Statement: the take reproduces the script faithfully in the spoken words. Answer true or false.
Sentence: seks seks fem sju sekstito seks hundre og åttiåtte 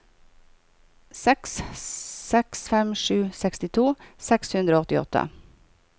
true